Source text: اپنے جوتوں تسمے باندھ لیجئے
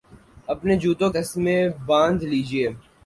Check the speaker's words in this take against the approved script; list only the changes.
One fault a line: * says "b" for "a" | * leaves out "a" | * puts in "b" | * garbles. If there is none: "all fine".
all fine